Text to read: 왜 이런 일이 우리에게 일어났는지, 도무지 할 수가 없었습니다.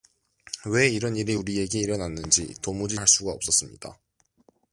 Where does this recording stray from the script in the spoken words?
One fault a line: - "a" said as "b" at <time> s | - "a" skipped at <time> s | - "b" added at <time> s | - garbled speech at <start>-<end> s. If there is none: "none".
none